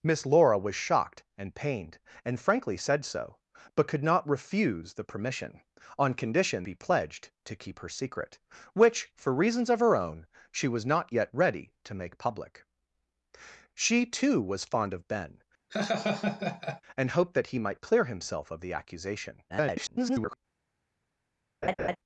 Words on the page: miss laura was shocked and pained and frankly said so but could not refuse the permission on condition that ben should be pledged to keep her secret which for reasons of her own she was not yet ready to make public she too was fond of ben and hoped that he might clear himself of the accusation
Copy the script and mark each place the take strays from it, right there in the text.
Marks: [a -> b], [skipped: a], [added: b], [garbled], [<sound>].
miss laura was shocked and pained and frankly said so but could not refuse the permission on condition [skipped: that ben should] be pledged to keep her secret which for reasons of her own she was not yet ready to make public she too was fond of ben [laugh] and hoped that he might clear himself of the accusation [garbled] [laugh]